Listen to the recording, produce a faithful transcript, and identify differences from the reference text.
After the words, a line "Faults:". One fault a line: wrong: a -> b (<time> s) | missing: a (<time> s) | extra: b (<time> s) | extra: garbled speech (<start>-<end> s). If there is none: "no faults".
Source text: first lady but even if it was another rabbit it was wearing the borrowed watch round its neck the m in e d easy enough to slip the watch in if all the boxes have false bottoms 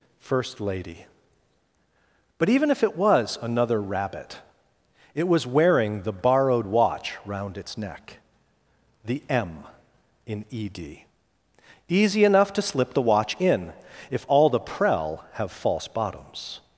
first lady but even if it was another rabbit it was wearing the borrowed watch round its neck the m in e d easy enough to slip the watch in if all the prel have false bottoms
Faults:
wrong: boxes -> prel (14.6 s)